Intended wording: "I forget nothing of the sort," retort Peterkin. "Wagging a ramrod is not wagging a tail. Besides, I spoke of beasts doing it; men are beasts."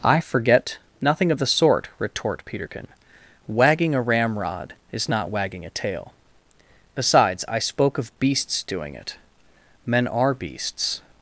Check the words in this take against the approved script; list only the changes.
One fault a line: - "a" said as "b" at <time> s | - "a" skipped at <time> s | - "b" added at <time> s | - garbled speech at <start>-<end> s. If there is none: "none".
none